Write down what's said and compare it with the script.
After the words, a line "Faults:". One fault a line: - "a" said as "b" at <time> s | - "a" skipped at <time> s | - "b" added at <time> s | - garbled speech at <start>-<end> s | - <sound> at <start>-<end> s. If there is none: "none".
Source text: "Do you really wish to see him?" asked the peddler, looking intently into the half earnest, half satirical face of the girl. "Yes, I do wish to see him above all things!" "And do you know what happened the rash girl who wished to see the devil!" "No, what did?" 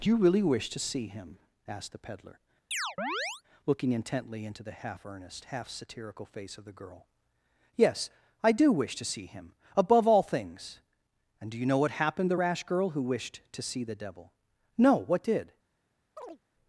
"Do you really wish to see him?" asked the peddler, looking intently into the half earnest, half satirical face of the girl. "Yes, I do wish to see him above all things!" "And do you know what happened the rash girl who wished to see the devil!" "No, what did?"
Faults:
- chirp at 2.7-3.4 s
- chirp at 16.2-16.4 s